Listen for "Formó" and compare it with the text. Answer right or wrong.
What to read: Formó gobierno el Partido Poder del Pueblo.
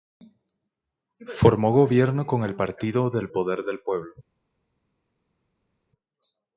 right